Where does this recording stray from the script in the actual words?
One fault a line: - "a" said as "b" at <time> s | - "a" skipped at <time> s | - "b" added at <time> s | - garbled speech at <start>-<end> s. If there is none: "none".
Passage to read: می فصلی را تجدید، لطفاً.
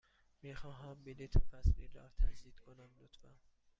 - "خواهم بلیط" added at 0.5 s
- "کنم" added at 2.6 s